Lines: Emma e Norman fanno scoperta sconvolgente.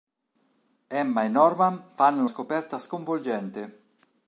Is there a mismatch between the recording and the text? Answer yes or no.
no